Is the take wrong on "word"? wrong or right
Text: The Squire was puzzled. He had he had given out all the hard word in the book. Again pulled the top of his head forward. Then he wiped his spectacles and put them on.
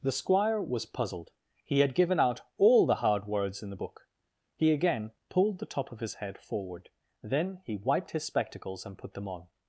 wrong